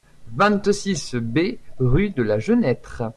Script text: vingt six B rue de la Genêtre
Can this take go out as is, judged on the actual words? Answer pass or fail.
pass